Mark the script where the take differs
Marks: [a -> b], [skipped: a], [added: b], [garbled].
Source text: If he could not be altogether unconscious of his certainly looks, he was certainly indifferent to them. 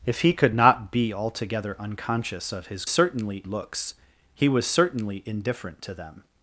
If he could not be altogether unconscious of his certainly looks, he was certainly indifferent to them.